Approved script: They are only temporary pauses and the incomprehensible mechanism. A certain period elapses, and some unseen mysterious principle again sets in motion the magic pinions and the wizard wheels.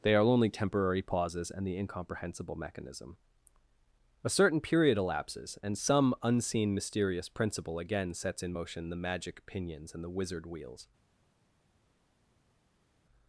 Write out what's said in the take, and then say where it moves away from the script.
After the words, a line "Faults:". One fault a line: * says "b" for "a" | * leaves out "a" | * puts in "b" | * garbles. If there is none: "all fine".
They are only temporary pauses and the incomprehensible mechanism. A certain period elapses, and some unseen mysterious principle again sets in motion the magic pinions and the wizard wheels.
Faults:
all fine